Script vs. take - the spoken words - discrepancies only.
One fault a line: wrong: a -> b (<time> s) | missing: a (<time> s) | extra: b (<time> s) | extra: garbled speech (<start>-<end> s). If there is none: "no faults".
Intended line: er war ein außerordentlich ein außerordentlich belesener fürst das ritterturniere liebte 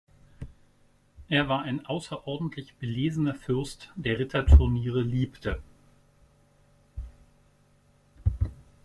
missing: ein außerordentlich (2.7 s)
wrong: das -> der (4.0 s)